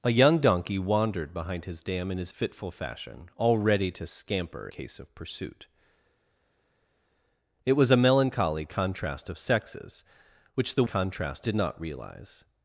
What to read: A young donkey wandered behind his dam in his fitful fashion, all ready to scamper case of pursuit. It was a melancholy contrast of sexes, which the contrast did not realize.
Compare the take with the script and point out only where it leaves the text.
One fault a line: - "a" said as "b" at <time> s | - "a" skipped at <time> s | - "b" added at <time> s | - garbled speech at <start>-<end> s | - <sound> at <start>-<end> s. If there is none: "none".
none